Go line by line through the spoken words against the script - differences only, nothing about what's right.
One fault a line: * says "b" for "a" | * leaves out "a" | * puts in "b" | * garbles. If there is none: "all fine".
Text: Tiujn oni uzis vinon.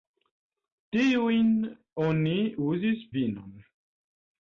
all fine